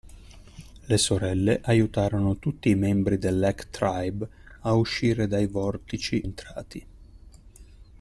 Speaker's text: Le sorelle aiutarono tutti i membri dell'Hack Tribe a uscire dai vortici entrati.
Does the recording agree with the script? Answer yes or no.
yes